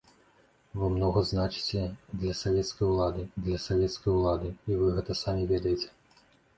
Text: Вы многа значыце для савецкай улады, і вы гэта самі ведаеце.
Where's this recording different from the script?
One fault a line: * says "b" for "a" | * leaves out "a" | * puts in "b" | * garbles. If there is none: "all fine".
* puts in "для савецкай улады"